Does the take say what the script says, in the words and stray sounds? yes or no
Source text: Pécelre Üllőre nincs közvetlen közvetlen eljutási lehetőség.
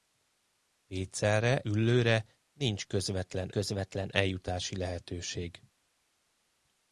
yes